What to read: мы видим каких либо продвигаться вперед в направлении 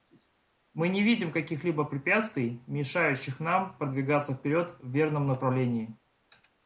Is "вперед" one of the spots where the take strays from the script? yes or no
no